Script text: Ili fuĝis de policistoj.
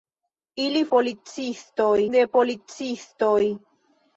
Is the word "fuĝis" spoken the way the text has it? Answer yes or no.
no